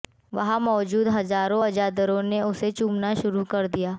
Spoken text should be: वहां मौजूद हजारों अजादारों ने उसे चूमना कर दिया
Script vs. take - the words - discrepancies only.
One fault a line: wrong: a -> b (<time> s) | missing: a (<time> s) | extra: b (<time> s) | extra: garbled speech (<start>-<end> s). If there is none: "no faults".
extra: शुरू (3.2 s)